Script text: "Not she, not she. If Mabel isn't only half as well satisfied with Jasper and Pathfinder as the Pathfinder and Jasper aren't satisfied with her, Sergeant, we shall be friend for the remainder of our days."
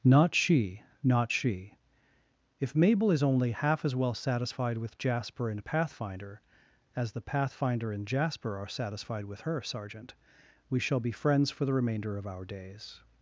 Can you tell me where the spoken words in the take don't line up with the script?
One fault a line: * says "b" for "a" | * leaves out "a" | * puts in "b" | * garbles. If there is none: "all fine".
* says "is" for "isn't"
* says "are" for "aren't"
* says "friends" for "friend"